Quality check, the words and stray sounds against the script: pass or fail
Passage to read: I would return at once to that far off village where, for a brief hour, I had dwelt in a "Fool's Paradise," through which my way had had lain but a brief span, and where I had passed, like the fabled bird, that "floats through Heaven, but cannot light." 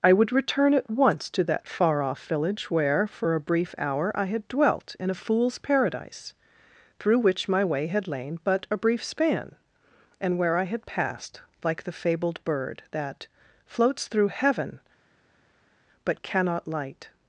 fail